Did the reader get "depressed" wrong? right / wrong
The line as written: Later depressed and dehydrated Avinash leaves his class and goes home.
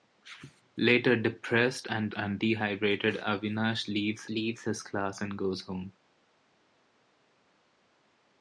right